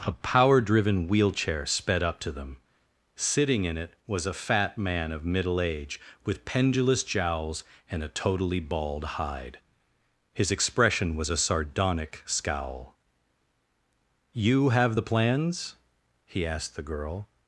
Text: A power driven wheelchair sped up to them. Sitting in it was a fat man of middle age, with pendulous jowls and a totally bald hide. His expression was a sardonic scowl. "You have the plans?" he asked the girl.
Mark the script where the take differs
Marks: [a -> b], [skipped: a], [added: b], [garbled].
A power driven wheelchair sped up to them. Sitting in it was a fat man of middle age, with pendulous jowls and a totally bald hide. His expression was a sardonic scowl. "You have the plans?" he asked the girl.